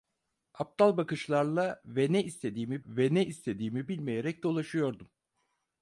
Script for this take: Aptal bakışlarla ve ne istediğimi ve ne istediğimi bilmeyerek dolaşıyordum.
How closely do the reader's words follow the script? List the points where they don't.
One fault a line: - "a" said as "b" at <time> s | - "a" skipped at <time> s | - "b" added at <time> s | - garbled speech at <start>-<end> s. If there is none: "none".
none